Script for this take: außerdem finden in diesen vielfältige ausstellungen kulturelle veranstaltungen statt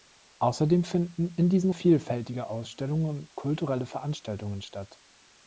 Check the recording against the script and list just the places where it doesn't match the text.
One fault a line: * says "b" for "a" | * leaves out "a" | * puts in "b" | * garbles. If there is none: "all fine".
all fine